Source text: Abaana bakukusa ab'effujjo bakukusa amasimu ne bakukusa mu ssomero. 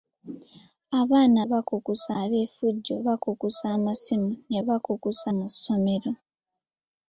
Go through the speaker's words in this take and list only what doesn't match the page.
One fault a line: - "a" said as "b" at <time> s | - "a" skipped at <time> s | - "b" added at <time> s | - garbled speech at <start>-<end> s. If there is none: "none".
none